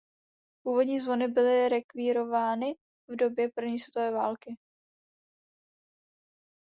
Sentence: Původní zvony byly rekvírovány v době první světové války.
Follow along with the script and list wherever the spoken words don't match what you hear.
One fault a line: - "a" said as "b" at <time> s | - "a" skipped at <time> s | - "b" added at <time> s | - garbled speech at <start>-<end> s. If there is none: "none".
none